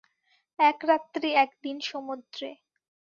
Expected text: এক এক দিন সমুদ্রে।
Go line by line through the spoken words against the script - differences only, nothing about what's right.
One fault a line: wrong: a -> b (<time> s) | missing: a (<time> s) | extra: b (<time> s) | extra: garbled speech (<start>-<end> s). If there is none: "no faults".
extra: রাত্রি (0.8 s)